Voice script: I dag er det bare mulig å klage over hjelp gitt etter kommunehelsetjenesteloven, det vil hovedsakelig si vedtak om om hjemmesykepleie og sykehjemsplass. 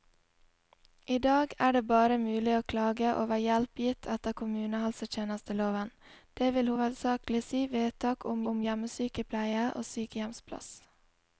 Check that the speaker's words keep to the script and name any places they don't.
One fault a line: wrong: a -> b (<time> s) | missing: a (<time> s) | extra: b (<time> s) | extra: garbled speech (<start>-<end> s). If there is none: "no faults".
no faults